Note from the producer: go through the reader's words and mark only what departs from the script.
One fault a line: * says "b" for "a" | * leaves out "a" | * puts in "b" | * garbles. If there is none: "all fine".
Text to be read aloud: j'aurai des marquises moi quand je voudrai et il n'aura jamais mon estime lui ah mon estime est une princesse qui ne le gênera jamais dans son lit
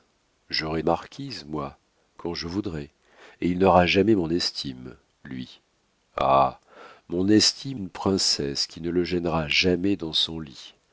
* leaves out "des"
* leaves out "est"